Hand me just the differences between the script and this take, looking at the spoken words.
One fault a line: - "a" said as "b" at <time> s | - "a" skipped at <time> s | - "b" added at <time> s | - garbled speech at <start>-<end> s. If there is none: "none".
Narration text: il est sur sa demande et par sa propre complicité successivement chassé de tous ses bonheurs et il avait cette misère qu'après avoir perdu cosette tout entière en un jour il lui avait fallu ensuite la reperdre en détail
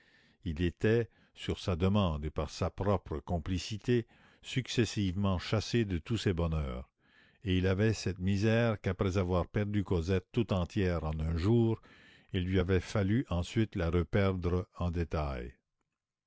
- "est" said as "était" at 0.6 s